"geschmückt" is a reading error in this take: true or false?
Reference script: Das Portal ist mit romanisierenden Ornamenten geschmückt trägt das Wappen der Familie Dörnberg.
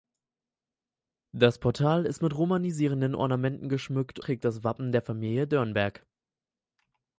false